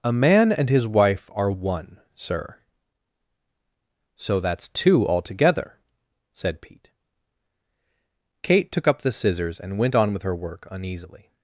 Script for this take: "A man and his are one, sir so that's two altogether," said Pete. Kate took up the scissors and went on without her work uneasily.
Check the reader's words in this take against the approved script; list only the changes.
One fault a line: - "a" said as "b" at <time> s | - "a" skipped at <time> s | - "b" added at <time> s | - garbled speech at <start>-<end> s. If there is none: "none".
- "wife" added at 0.9 s
- "without" said as "with" at 10.1 s